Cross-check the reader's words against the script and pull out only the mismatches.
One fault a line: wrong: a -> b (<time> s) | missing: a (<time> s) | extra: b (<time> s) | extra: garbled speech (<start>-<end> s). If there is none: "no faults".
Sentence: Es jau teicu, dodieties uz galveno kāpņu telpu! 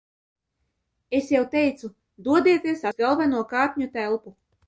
no faults